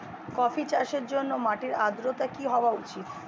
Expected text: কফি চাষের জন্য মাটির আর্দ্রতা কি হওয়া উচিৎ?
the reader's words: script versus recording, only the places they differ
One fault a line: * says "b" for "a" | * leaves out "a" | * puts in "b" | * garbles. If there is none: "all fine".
all fine